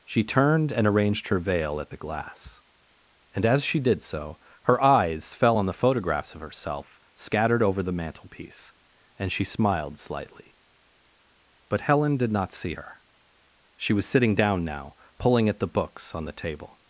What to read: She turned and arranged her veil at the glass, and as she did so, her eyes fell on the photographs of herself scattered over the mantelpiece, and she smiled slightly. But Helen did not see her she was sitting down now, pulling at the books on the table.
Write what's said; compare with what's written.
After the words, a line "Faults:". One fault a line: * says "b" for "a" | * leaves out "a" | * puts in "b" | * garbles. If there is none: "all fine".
She turned and arranged her veil at the glass, and as she did so, her eyes fell on the photographs of herself scattered over the mantelpiece, and she smiled slightly. But Helen did not see her she was sitting down now, pulling at the books on the table.
Faults:
all fine